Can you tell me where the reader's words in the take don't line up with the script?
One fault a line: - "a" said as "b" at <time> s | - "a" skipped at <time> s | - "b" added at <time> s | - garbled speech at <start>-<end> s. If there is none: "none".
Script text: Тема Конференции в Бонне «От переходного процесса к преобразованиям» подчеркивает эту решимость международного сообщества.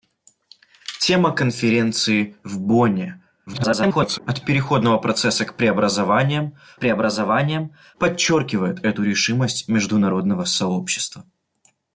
- garbled speech at 3.5-4.2 s
- "преобразованиям" added at 6.8 s